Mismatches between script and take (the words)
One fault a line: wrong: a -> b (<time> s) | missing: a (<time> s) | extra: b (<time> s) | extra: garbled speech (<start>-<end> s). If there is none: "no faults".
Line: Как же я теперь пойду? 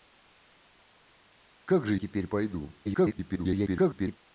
missing: я (1.9 s)
extra: garbled speech (2.8-4.2 s)